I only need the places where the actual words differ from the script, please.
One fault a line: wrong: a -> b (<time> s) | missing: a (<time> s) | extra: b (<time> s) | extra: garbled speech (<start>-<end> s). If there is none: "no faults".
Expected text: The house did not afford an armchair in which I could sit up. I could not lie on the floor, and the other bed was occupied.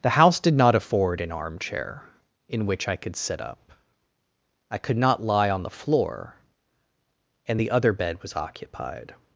no faults